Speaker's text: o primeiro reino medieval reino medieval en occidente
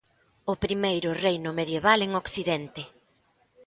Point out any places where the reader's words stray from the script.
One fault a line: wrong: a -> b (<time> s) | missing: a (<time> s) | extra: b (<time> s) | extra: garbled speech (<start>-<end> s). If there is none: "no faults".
missing: reino medieval (2.0 s)